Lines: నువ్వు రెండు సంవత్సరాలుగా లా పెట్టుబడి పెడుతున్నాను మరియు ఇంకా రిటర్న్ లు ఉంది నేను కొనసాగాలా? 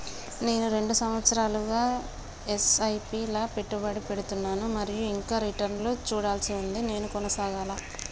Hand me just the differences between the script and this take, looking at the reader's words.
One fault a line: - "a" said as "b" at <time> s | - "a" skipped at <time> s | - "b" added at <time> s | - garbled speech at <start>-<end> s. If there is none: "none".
- "నువ్వు" said as "నేను" at 0.4 s
- "ల ఎస్.ఐ.పి" added at 1.9 s
- "చూడాల్సి" added at 6.1 s